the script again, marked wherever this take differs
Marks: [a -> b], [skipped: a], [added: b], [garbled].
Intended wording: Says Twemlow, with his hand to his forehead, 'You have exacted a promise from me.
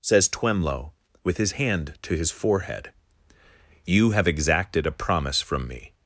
Says Twemlow, with his hand to his forehead, 'You have exacted a promise from me.